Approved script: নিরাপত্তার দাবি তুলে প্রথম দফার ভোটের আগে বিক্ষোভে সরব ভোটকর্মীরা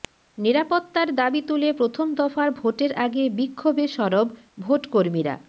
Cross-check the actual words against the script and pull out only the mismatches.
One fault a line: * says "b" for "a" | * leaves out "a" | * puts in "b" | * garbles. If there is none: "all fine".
all fine